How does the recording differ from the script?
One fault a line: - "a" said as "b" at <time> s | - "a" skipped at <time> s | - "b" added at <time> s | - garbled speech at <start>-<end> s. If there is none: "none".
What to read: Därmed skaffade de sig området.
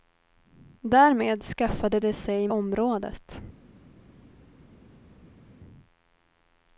none